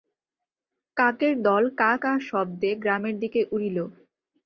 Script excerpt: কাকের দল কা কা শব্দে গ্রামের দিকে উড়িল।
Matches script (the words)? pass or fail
pass